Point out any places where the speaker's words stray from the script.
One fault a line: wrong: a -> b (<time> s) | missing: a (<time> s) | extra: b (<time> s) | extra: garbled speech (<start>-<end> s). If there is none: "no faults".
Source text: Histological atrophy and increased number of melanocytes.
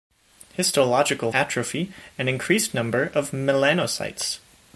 no faults